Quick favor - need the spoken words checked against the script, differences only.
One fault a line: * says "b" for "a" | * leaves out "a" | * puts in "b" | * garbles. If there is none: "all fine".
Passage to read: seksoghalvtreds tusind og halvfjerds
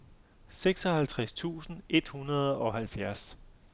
* puts in "et hundrede"